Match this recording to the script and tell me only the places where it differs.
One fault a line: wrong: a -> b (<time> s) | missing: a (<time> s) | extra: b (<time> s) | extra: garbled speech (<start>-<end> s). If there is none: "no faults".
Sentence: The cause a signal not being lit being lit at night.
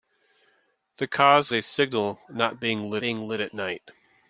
no faults